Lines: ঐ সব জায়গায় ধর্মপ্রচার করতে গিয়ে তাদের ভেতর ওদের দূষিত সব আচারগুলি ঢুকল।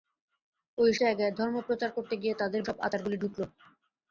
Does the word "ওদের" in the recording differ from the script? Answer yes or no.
yes